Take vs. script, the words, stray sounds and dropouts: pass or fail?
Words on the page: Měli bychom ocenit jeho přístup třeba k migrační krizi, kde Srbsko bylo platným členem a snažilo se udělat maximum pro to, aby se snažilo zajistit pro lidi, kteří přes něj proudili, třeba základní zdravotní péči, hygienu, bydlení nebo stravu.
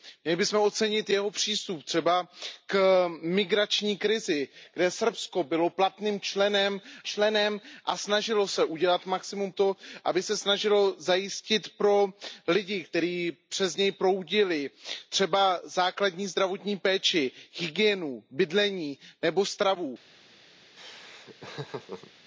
fail